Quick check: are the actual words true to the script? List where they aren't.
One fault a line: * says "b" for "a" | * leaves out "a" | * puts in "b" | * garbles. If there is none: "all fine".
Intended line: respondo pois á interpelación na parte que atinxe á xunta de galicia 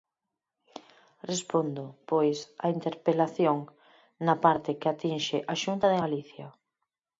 all fine